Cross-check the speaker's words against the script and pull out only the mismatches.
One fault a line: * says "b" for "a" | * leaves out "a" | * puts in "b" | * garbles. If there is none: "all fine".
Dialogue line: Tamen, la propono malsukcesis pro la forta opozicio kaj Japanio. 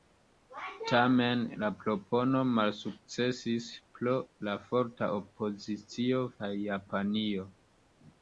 all fine